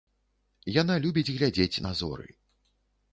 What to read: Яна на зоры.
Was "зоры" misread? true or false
false